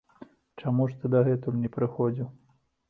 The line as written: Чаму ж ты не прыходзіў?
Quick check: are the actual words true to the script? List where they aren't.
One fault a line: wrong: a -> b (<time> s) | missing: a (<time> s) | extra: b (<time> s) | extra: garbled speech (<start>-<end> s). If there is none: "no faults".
extra: дагэтуль (1.2 s)